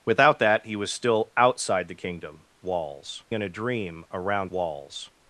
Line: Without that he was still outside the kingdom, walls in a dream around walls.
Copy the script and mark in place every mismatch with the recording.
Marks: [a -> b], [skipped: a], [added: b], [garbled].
Without that he was still outside the kingdom, walls in a dream around walls.